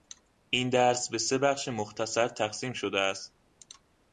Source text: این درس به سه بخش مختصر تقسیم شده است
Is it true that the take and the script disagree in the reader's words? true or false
false